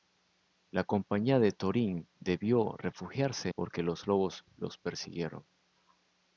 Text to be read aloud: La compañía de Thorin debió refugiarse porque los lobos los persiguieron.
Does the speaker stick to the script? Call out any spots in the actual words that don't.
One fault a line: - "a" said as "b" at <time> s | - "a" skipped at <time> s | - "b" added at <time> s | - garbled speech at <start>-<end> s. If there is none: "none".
none